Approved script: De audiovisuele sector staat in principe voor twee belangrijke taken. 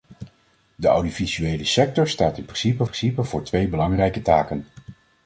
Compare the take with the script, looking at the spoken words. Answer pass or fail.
fail